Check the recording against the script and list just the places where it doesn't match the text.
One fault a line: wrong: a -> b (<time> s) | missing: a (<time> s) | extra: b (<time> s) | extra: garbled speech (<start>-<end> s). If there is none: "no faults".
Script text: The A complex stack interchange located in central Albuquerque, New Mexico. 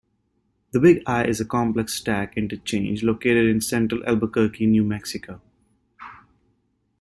extra: Big I is (0.8 s)